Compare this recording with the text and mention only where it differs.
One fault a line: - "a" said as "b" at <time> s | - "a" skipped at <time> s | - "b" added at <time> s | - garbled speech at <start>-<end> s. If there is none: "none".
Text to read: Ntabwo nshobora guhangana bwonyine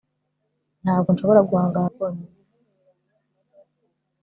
none